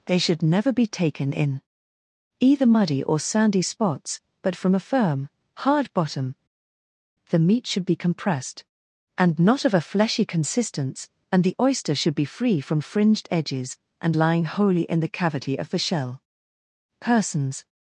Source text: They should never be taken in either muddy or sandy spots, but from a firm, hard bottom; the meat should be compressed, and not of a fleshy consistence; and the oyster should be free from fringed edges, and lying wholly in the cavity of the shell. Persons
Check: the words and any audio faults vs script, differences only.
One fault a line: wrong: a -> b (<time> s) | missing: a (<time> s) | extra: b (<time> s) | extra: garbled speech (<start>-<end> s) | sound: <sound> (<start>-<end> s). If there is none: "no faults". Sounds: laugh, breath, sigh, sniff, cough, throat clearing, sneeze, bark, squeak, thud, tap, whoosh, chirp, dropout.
no faults